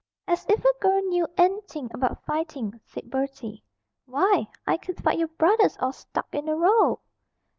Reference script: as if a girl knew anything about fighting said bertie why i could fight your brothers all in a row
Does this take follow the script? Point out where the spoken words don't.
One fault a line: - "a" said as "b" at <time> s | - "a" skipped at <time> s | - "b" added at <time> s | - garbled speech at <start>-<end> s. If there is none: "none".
- "stuck" added at 5.9 s